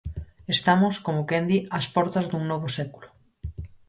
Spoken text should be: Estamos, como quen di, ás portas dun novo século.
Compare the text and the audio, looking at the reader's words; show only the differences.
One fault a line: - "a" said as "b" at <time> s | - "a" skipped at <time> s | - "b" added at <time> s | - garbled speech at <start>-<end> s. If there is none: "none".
none